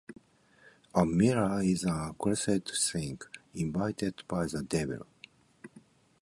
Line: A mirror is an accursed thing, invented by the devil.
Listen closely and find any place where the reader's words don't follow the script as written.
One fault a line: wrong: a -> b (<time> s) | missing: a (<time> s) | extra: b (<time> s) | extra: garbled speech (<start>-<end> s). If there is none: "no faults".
no faults